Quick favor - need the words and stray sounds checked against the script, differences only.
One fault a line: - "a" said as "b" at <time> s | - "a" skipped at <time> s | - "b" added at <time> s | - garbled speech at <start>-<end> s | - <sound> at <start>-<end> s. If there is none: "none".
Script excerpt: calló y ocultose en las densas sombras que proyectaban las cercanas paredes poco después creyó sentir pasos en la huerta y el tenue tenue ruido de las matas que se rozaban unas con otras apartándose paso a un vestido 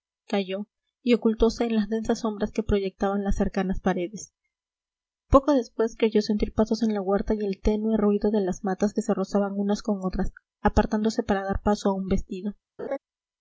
- "tenue" skipped at 8.0 s
- "para dar" added at 11.2 s
- laugh at 12.8-13.0 s